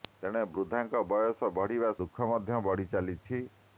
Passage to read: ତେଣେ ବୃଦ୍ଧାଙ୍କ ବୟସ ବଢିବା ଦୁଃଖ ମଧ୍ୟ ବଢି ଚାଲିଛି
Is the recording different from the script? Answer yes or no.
no